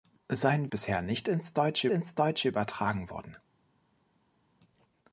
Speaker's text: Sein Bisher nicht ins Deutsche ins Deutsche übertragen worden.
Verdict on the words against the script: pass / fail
pass